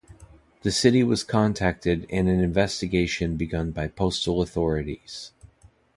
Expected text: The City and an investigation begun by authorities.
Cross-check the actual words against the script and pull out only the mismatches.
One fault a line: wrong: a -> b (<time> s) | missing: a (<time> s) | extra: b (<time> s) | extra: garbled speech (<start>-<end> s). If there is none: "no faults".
extra: was contacted (1.0 s)
extra: postal (3.9 s)